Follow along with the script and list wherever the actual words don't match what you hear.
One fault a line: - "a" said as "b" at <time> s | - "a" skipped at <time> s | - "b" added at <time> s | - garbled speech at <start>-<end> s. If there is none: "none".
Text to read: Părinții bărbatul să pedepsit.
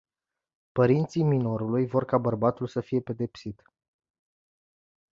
- "minorului vor ca" added at 1.2 s
- "fie" added at 2.8 s